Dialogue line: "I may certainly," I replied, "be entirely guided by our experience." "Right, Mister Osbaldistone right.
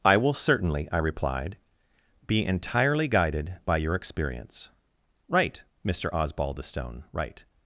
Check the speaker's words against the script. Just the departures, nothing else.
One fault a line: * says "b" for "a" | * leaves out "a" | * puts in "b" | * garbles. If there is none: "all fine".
* says "will" for "may"
* says "your" for "our"